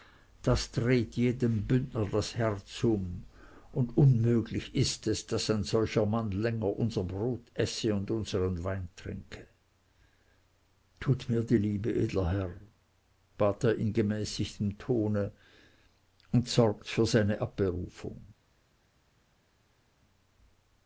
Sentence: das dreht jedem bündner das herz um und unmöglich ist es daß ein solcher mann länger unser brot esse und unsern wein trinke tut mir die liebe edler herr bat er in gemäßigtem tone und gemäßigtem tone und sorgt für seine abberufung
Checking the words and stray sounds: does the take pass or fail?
fail